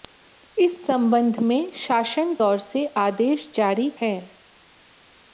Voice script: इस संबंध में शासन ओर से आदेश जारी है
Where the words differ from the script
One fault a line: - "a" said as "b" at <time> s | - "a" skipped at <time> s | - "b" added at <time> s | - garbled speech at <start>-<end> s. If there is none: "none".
none